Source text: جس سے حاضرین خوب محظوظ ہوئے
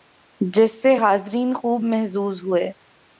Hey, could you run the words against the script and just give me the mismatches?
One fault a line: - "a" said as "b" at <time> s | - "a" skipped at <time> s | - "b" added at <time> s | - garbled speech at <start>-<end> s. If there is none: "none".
none